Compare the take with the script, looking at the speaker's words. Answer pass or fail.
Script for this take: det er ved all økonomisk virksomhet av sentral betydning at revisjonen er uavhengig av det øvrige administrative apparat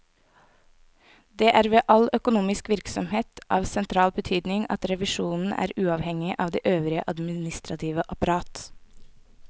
pass